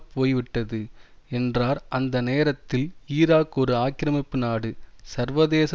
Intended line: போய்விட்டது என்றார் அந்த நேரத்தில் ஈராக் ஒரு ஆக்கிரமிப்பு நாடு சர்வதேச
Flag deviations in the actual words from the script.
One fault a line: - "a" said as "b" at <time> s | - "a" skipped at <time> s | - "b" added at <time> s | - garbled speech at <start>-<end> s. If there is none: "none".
none